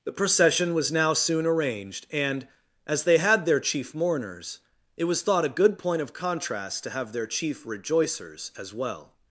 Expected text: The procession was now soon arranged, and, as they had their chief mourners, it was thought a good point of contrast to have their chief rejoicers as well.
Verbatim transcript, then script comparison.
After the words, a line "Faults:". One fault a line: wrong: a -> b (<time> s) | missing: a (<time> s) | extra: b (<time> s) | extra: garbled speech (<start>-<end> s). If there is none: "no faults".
The procession was now soon arranged, and, as they had their chief mourners, it was thought a good point of contrast to have their chief rejoicers as well.
Faults:
no faults